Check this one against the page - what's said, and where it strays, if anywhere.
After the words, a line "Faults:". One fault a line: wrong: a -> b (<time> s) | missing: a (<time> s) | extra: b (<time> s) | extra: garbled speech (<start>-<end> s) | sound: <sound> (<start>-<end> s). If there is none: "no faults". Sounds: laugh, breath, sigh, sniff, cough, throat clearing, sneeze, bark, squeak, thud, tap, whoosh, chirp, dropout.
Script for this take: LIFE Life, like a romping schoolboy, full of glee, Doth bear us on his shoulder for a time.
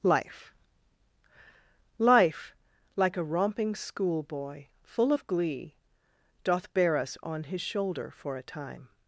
LIFE Life, like a romping schoolboy, full of glee, Doth bear us on his shoulder for a time.
Faults:
no faults